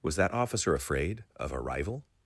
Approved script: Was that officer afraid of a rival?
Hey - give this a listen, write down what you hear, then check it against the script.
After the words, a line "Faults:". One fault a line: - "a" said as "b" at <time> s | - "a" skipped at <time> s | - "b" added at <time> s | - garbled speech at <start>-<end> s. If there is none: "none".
Was that officer afraid of a rival?
Faults:
none